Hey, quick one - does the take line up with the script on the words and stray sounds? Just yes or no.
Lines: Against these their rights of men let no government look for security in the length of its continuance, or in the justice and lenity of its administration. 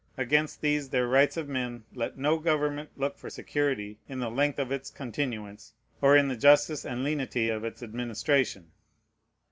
yes